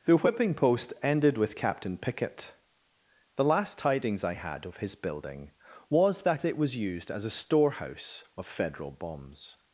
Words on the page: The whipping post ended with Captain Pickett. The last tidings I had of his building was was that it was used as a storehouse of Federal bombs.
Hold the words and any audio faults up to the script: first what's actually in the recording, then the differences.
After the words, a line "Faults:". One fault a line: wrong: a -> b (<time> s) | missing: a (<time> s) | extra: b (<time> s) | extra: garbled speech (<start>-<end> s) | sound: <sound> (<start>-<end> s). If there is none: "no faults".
The whipping post ended with Captain Pickett. The last tidings I had of his building was that it was used as a storehouse of Federal bombs.
Faults:
missing: was (6.2 s)